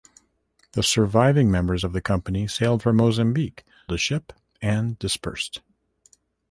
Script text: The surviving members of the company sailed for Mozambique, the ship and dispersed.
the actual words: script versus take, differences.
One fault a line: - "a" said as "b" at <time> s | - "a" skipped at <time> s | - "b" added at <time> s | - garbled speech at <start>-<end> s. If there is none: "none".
none